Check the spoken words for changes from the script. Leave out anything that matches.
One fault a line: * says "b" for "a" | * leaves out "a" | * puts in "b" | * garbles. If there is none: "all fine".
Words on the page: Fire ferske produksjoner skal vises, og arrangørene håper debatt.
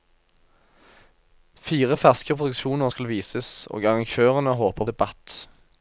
all fine